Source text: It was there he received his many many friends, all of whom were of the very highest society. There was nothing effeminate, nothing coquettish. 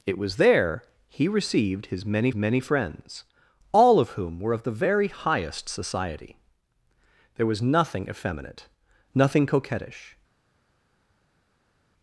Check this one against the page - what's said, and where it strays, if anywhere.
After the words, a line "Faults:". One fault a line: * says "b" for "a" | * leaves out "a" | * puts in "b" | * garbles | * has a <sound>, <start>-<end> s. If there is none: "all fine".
It was there he received his many many friends, all of whom were of the very highest society. There was nothing effeminate, nothing coquettish.
Faults:
all fine